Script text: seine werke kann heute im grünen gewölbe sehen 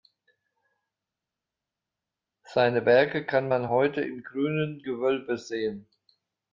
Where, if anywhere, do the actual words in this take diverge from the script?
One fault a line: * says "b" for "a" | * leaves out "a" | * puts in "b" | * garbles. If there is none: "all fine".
* puts in "man"